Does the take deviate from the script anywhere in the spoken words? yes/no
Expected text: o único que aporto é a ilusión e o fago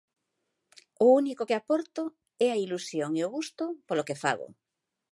yes